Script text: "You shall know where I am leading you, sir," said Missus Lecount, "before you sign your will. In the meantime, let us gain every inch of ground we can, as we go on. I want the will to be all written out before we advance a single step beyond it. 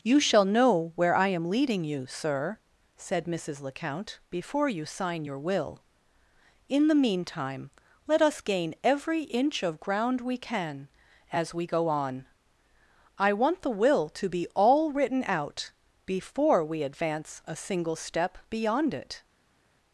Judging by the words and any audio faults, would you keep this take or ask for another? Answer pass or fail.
pass